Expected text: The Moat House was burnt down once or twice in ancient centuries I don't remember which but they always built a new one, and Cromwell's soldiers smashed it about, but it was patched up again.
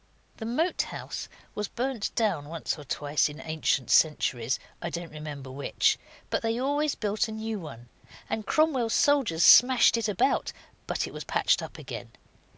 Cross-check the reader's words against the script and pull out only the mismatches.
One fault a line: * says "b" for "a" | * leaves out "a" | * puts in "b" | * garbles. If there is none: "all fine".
all fine